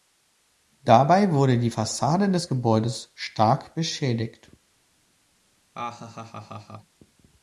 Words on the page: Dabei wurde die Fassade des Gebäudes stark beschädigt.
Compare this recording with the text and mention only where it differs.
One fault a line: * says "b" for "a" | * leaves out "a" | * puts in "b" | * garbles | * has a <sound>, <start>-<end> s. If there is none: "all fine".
* has a laugh, 5.7-7.0 s